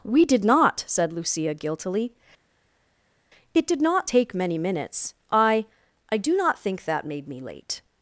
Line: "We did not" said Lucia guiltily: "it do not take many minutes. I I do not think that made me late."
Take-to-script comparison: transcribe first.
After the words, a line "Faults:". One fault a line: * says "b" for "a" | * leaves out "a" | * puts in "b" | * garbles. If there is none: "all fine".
"We did not" said Lucia guiltily: "it did not take many minutes. I I do not think that made me late."
Faults:
* says "did" for "do"